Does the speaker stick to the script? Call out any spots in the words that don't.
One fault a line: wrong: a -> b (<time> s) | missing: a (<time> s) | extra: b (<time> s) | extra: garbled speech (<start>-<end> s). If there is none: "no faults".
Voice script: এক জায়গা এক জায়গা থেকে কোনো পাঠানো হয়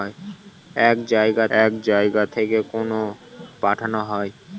no faults